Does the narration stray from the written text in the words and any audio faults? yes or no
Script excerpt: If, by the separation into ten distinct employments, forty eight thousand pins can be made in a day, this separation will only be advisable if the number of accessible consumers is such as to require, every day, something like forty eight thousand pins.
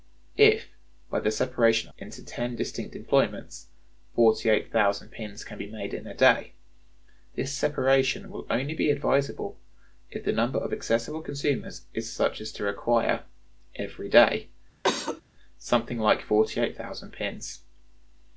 yes